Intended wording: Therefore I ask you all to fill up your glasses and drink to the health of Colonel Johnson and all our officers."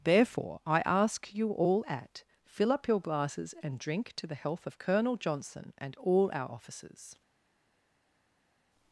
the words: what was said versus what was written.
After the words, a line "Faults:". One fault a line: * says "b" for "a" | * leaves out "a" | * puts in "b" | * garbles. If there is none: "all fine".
Therefore I ask you all at fill up your glasses and drink to the health of Colonel Johnson and all our officers."
Faults:
* says "at" for "to"